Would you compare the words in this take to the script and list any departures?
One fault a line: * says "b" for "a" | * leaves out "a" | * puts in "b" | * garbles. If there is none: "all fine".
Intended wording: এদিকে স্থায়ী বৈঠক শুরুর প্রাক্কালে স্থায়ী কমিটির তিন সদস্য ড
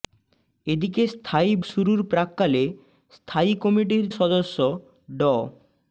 * leaves out "বৈঠক"
* leaves out "তিন"